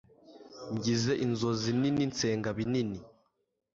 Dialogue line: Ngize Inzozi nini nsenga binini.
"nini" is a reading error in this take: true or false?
false